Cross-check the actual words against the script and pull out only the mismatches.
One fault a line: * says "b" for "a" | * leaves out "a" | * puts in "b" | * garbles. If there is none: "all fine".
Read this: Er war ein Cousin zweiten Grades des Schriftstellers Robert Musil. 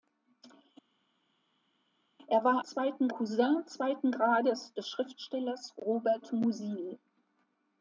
* says "zweiten" for "ein"